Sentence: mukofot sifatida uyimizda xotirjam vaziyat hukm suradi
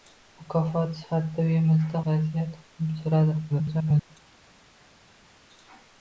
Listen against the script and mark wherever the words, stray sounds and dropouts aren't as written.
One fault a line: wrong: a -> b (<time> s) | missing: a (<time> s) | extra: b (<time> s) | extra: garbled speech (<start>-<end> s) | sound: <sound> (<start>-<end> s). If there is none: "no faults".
missing: xotirjam (2.0 s)
extra: garbled speech (3.5-4.1 s)